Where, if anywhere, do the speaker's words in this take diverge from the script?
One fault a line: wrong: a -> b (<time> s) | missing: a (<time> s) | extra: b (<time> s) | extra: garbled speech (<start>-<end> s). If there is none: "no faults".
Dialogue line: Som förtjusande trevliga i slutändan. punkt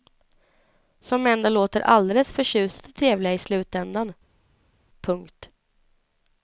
extra: ändå låter alldeles (1.3 s)